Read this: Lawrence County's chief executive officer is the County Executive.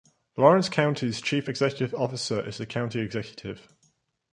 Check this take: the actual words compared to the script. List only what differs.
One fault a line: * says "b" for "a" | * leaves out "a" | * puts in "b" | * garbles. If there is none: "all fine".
all fine